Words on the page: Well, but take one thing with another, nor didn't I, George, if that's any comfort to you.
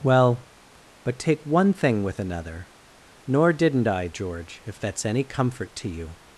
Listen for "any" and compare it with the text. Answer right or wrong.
right